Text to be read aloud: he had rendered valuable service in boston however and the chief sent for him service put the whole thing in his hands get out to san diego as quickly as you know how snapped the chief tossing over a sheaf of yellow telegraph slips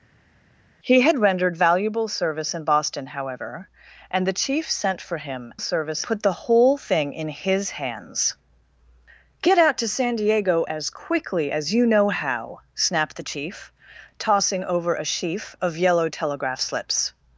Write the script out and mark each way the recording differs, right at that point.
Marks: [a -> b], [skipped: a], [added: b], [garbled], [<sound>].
he had rendered valuable service in boston however and the chief sent for him service put the whole thing in his hands get out to san diego as quickly as you know how snapped the chief tossing over a sheaf of yellow telegraph slips